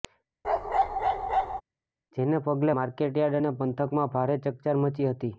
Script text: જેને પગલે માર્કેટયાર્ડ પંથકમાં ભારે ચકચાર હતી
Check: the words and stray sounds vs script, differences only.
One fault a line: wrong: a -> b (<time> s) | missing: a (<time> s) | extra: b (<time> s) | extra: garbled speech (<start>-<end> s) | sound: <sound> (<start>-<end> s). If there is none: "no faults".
sound: bark (0.4-1.6 s)
extra: અને (3.4 s)
extra: મચી (4.9 s)